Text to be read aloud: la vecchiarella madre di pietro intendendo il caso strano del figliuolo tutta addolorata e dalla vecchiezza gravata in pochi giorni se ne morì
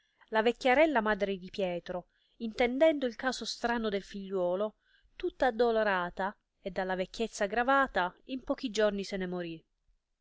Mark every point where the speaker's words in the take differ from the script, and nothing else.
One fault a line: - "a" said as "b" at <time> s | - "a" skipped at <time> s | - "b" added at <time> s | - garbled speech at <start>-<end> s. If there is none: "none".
none